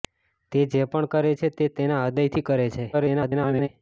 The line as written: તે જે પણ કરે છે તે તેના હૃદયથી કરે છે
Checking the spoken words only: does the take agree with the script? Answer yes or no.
no